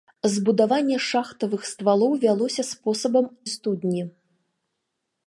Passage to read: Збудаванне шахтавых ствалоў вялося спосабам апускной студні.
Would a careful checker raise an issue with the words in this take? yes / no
yes